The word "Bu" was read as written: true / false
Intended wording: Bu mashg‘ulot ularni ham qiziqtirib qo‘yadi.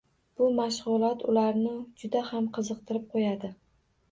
true